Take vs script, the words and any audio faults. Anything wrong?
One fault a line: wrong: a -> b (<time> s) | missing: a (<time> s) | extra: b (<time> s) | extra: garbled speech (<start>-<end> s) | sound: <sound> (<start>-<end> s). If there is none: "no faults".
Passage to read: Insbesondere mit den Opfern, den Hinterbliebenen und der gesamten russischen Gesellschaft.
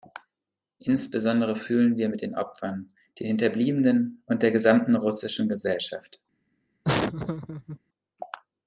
extra: fühlen wir (1.6 s)
sound: laugh (6.8-7.8 s)